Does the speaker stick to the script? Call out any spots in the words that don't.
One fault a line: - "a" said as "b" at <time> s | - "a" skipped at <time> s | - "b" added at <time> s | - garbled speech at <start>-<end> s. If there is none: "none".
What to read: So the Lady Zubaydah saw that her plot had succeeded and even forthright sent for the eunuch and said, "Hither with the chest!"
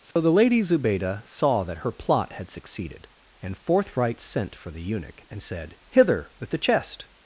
- "even" skipped at 3.6 s